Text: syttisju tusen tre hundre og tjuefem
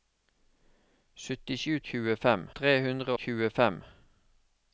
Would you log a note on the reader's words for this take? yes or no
yes